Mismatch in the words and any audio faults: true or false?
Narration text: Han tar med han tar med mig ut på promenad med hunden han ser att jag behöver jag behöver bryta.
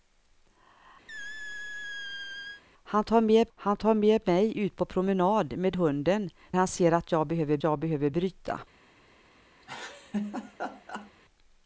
true